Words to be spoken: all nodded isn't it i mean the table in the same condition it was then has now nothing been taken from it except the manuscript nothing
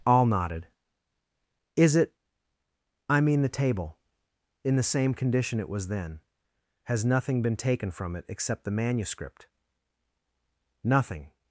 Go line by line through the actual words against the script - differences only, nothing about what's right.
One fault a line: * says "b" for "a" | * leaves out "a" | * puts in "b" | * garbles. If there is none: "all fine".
* says "is" for "isn't"
* leaves out "now"